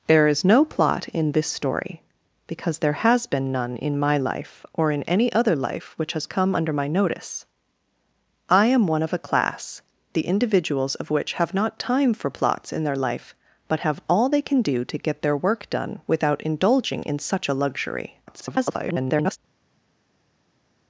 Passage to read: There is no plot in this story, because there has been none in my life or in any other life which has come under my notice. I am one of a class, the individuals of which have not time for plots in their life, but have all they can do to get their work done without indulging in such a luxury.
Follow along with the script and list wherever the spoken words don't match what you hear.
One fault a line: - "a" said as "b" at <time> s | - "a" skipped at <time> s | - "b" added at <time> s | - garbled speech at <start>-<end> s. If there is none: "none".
- garbled speech at 18.3-19.4 s